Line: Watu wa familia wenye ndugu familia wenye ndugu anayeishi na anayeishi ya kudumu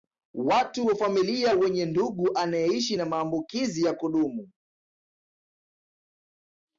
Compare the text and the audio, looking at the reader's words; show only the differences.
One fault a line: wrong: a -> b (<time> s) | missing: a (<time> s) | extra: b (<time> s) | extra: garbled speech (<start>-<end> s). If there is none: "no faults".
missing: familia wenye ndugu (2.4 s)
wrong: anayeishi -> maambukizi (3.0 s)